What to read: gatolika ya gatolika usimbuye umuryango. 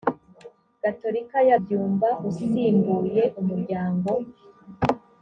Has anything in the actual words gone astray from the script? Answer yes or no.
yes